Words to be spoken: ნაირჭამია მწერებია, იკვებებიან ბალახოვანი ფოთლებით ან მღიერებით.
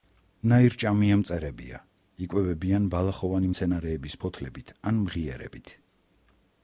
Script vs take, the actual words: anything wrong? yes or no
yes